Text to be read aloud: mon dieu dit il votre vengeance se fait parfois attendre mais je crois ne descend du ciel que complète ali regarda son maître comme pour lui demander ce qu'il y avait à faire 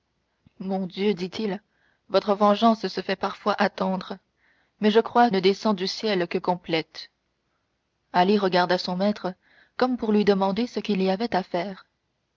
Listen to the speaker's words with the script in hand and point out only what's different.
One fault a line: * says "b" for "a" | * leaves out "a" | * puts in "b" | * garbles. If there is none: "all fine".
all fine